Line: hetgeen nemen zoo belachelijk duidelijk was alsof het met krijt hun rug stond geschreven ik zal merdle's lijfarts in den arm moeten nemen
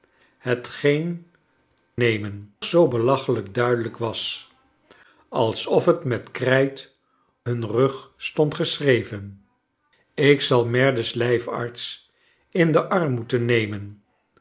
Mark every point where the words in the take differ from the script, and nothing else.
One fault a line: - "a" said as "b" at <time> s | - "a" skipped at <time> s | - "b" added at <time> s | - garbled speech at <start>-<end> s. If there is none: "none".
none